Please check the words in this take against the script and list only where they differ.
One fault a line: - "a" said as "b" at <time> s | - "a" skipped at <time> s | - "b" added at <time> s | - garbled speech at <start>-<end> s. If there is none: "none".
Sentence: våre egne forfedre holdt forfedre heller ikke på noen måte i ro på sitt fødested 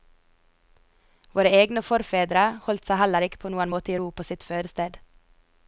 - "forfedre" said as "seg" at 2.9 s